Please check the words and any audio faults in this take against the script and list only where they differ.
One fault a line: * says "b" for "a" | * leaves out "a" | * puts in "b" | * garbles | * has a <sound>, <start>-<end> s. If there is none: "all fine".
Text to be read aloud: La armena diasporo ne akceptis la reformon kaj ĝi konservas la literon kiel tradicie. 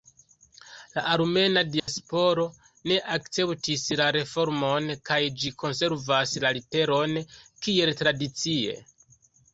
* has a dropout, 1.8-1.9 s